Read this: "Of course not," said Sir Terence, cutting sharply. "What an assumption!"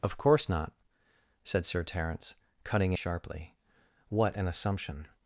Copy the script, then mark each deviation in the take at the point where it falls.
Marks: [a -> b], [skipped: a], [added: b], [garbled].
"Of course not," said Sir Terence, cutting sharply. "What an assumption!"